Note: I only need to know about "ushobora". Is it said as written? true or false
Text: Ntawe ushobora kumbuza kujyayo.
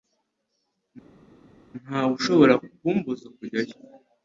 true